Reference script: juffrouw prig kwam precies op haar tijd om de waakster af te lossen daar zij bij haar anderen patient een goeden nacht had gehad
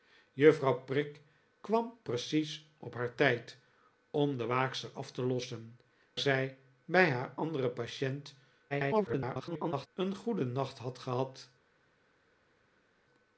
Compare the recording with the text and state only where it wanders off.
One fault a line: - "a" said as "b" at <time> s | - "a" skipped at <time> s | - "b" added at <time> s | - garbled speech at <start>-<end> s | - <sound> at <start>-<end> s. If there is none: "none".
- "daar" skipped at 5.8 s
- garbled speech at 8.7-9.9 s